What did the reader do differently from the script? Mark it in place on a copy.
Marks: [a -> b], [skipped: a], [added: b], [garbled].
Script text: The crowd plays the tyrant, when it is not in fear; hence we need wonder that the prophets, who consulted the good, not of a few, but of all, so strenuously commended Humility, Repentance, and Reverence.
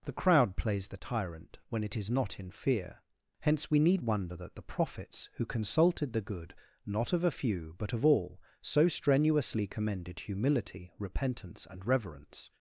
The crowd plays the tyrant, when it is not in fear; hence we need wonder that the prophets, who consulted the good, not of a few, but of all, so strenuously commended Humility, Repentance, and Reverence.